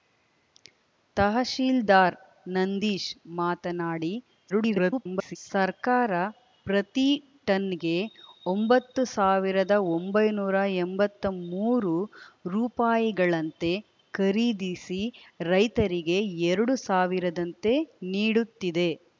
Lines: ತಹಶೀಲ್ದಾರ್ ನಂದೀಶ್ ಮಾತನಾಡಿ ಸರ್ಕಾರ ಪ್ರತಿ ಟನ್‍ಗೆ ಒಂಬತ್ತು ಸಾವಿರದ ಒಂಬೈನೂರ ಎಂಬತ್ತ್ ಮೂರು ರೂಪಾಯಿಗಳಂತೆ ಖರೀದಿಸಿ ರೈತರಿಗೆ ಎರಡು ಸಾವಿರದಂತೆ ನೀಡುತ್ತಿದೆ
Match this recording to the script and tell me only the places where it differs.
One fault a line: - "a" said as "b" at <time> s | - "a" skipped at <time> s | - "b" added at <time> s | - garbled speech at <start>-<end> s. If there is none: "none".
- garbled speech at 4.5-5.4 s